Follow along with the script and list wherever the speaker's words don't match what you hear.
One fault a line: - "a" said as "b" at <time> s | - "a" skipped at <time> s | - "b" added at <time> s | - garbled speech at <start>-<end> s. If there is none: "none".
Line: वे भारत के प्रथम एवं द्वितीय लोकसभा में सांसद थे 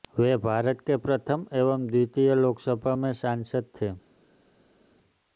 none